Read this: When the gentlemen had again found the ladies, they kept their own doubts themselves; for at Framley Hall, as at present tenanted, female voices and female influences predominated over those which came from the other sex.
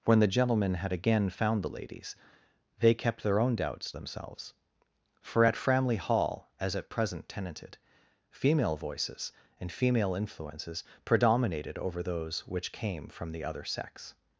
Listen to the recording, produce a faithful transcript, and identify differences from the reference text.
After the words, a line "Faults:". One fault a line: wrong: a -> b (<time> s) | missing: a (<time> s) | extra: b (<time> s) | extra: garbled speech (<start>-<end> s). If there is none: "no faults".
When the gentlemen had again found the ladies, they kept their own doubts themselves; for at Framley Hall, as at present tenanted, female voices and female influences predominated over those which came from the other sex.
Faults:
no faults